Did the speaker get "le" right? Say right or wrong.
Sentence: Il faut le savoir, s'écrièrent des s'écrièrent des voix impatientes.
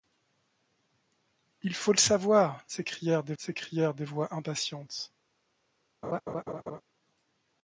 right